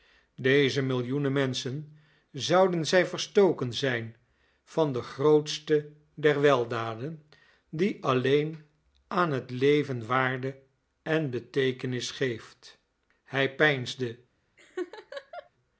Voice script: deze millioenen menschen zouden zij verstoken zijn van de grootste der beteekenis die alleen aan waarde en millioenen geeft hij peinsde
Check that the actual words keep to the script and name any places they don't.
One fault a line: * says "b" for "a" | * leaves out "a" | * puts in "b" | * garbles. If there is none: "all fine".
* says "weldaden" for "beteekenis"
* puts in "het leven"
* says "beteekenis" for "millioenen"